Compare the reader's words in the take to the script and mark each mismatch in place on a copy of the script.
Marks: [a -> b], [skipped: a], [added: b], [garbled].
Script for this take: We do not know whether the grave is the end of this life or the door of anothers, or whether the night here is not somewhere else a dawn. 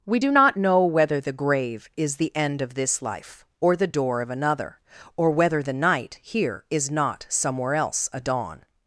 We do not know whether the grave is the end of this life or the door of [anothers, -> another] or whether the night here is not somewhere else a dawn.